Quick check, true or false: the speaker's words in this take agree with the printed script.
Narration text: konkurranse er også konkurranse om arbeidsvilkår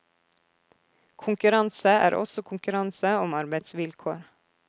true